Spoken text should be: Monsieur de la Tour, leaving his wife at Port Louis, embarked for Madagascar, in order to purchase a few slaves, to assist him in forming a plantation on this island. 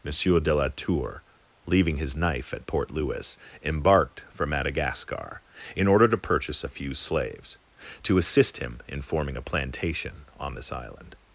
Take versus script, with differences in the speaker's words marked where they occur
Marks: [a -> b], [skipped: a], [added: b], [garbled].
Monsieur de la Tour, leaving his [wife -> knife] at Port Louis, embarked for Madagascar, in order to purchase a few slaves, to assist him in forming a plantation on this island.